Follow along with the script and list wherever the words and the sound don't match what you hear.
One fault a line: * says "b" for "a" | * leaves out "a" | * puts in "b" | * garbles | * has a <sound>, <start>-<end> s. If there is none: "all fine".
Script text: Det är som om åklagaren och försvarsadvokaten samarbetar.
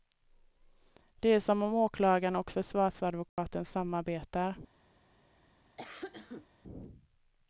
* has a dropout, 3.3-3.4 s
* has a cough, 5.8-6.5 s